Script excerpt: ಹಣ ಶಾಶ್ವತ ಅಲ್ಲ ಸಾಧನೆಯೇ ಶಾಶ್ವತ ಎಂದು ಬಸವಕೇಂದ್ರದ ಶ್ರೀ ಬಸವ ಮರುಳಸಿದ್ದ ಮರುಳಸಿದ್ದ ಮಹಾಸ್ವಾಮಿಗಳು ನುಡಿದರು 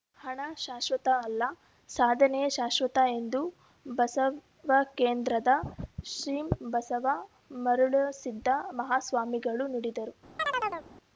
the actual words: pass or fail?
fail